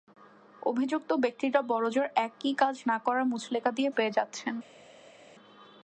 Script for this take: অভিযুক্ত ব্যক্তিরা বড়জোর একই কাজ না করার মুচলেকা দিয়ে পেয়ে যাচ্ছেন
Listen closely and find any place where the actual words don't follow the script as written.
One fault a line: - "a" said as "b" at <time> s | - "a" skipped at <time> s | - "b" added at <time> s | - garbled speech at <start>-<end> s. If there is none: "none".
none